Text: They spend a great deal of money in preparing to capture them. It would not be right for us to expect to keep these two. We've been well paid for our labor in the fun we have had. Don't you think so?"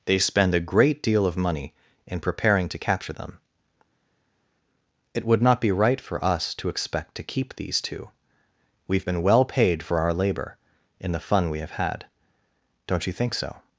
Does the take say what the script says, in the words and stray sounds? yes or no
yes